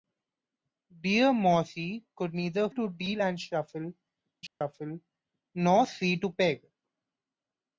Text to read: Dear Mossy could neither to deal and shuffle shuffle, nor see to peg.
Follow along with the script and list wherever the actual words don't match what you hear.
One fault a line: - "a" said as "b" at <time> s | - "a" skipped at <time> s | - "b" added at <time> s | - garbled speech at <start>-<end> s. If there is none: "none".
none